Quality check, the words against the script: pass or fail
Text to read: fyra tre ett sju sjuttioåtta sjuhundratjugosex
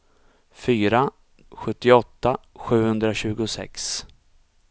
fail